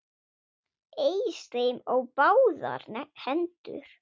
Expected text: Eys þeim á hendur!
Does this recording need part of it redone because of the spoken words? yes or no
yes